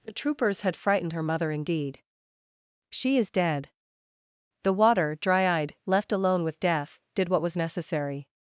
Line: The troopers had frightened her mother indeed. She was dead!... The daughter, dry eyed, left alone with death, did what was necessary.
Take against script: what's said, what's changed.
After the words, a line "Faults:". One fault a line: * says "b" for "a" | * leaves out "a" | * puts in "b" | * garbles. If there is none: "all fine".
The troopers had frightened her mother indeed. She is dead!... The water, dry eyed, left alone with death, did what was necessary.
Faults:
* says "is" for "was"
* says "water" for "daughter"